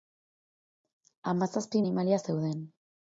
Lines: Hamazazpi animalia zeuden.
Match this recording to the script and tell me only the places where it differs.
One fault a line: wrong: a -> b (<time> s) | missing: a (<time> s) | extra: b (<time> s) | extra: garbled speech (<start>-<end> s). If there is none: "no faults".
no faults